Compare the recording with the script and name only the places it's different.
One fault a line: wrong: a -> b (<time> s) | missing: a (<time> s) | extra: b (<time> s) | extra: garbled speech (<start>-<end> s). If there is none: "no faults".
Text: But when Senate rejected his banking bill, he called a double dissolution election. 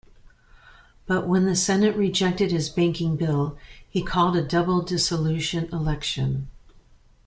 extra: the (1.4 s)